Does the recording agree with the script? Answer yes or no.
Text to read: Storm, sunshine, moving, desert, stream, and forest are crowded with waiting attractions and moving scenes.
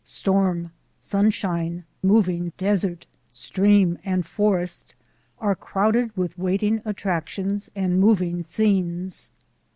yes